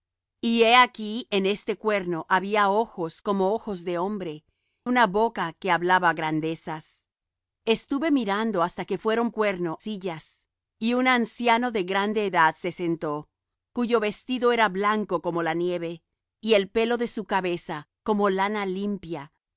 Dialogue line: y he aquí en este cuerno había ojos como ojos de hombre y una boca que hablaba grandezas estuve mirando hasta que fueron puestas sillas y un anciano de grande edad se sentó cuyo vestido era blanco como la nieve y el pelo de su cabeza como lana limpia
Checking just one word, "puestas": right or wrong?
wrong